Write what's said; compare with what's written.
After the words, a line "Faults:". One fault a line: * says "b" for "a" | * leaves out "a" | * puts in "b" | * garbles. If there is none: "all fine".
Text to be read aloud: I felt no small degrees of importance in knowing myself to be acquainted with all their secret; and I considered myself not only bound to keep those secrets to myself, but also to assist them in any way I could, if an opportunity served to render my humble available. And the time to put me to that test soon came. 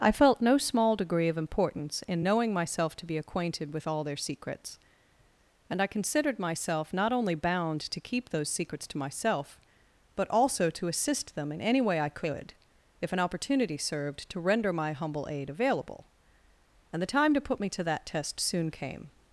I felt no small degree of importance in knowing myself to be acquainted with all their secrets; and I considered myself not only bound to keep those secrets to myself, but also to assist them in any way I could, if an opportunity served to render my humble aid available. And the time to put me to that test soon came.
Faults:
* says "degree" for "degrees"
* says "secrets" for "secret"
* puts in "aid"